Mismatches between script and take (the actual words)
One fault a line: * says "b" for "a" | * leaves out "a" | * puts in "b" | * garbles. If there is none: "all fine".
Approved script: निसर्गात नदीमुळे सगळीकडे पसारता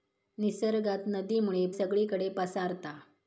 all fine